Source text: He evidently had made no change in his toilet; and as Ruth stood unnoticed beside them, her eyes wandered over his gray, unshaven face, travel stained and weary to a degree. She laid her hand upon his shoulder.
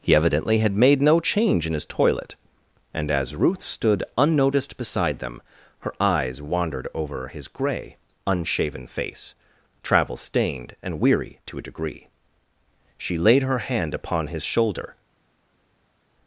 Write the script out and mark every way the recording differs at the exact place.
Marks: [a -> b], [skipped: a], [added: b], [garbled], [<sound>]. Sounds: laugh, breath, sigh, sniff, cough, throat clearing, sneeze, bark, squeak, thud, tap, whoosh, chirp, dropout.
He evidently had made no change in his toilet; and as Ruth stood unnoticed beside them, her eyes wandered over his gray, unshaven face, travel stained and weary to a degree. She laid her hand upon his shoulder.